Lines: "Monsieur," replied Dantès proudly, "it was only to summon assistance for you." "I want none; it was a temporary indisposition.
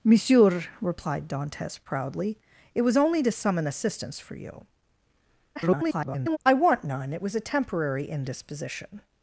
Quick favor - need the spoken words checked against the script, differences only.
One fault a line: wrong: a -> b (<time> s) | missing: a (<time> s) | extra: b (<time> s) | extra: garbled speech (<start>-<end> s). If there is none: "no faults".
extra: garbled speech (5.6-6.4 s)